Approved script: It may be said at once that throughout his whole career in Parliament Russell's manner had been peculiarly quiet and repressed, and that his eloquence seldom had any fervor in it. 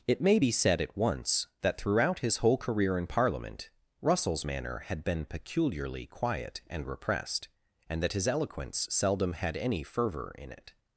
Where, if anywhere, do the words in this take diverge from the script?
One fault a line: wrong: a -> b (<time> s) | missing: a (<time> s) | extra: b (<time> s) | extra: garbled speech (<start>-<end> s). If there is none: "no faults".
no faults